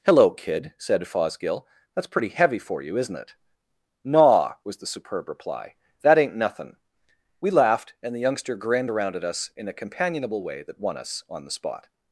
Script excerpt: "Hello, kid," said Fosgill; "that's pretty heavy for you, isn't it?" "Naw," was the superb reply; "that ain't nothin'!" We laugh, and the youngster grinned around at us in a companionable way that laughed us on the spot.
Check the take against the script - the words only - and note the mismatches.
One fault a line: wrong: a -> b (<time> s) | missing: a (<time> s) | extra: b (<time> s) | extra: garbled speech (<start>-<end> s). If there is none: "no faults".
wrong: laugh -> laughed (7.5 s)
wrong: laughed -> won (10.8 s)